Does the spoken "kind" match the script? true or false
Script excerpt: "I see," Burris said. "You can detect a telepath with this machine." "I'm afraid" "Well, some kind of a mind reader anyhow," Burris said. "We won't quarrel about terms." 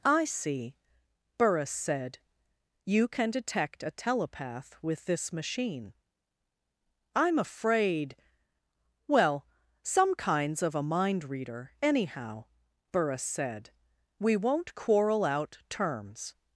false